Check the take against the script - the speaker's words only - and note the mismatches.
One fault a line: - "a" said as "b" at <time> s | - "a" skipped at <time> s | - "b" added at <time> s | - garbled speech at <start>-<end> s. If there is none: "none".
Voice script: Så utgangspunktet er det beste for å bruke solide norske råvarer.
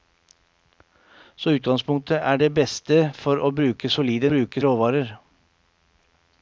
- "norske" said as "bruke" at 4.3 s